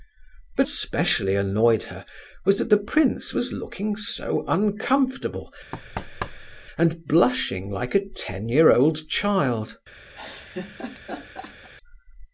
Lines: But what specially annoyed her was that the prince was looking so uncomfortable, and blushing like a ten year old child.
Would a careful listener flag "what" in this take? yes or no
yes